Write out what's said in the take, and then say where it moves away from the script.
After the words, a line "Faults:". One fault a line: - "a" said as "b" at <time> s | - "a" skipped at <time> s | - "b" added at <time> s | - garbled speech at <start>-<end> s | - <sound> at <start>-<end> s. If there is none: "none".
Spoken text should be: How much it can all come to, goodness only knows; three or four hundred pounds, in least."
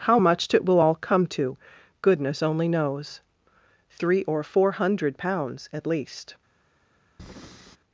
How much it will all come to, goodness only knows; three or four hundred pounds, at least."
Faults:
- "can" said as "will" at 0.6 s
- "in" said as "at" at 5.7 s
- breath at 7.2-7.8 s